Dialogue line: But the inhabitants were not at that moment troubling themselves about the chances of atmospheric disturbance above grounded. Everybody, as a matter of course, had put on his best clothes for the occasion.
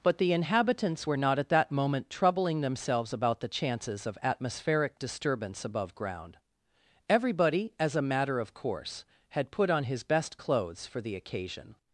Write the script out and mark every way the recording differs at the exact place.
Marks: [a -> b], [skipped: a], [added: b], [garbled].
But the inhabitants were not at that moment troubling themselves about the chances of atmospheric disturbance above [grounded. -> ground] Everybody, as a matter of course, had put on his best clothes for the occasion.